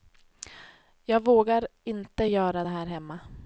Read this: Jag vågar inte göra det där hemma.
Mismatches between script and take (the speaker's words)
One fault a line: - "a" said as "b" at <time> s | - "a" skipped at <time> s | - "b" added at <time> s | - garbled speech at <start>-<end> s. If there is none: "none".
- "där" said as "här" at 2.7 s